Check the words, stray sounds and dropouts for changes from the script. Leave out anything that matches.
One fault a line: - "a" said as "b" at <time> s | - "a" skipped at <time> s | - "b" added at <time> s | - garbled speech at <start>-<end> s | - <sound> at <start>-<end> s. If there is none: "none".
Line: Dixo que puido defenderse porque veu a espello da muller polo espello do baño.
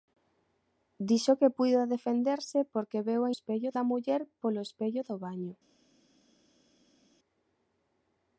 none